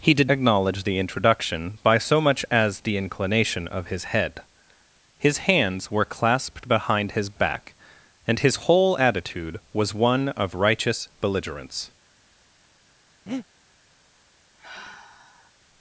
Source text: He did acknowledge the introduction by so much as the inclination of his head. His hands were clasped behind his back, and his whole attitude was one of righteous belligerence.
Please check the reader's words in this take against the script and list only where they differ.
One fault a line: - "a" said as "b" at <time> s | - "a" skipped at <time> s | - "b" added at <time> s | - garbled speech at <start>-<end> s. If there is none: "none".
none